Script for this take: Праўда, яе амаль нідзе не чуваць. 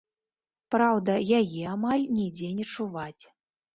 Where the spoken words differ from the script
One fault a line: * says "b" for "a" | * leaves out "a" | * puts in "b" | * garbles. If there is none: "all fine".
all fine